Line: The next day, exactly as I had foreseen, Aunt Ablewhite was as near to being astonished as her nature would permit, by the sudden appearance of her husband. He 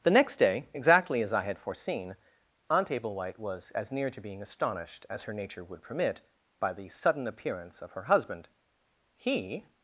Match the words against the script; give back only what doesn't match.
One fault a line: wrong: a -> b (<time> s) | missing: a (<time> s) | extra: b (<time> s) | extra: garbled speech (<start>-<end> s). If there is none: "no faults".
no faults